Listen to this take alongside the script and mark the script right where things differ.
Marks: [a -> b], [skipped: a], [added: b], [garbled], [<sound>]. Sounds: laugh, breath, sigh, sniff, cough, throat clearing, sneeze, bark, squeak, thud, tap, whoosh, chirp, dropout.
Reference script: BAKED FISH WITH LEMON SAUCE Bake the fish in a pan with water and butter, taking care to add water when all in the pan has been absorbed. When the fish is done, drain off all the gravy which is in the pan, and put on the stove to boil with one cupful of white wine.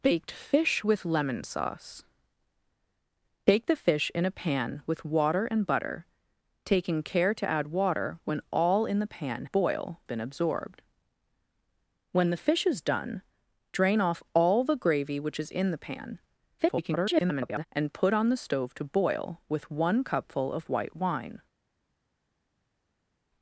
BAKED FISH WITH LEMON SAUCE Bake the fish in a pan with water and butter, taking care to add water when all in the pan [has -> boil] been absorbed. When the fish is done, drain off all the gravy which is in the pan, [garbled] and put on the stove to boil with one cupful of white wine.